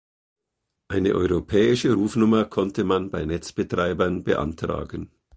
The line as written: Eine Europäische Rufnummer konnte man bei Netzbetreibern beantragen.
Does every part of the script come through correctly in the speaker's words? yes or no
yes